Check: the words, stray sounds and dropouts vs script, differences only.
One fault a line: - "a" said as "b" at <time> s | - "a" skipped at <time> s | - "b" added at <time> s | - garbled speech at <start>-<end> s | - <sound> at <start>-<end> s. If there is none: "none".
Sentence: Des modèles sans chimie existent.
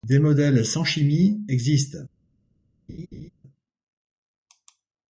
- laugh at 2.9-3.3 s